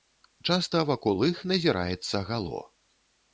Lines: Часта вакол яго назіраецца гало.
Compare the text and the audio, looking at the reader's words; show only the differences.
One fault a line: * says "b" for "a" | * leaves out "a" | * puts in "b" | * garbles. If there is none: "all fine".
* says "іх" for "яго"